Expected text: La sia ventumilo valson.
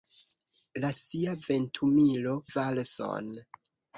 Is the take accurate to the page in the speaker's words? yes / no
yes